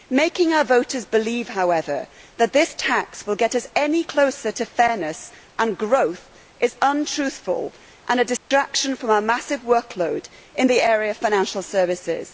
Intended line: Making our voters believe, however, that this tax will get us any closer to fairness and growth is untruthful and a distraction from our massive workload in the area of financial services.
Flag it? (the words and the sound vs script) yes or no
yes